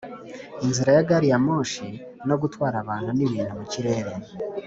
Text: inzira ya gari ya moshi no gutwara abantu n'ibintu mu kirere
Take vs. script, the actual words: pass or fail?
pass